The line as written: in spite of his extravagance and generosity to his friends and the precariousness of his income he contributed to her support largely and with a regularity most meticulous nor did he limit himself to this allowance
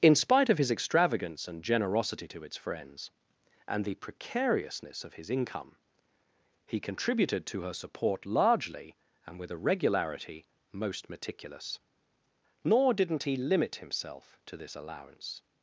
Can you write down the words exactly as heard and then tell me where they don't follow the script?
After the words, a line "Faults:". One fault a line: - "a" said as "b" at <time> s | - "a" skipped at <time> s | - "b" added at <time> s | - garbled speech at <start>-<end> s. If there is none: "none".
in spite of his extravagance and generosity to its friends and the precariousness of his income he contributed to her support largely and with a regularity most meticulous nor didn't he limit himself to this allowance
Faults:
- "his" said as "its" at 2.4 s
- "did" said as "didn't" at 12.9 s